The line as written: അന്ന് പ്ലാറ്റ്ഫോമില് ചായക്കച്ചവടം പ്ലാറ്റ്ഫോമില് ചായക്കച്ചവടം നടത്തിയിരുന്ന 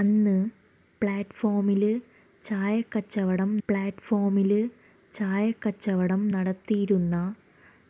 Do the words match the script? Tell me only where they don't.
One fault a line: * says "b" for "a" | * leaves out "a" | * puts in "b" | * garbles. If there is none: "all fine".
all fine